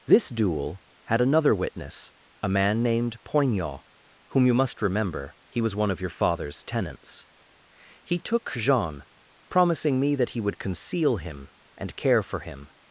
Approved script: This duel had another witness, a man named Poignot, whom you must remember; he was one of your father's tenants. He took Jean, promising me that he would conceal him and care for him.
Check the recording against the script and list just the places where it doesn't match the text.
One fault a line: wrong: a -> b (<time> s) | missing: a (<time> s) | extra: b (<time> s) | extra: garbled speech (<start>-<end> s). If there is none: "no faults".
no faults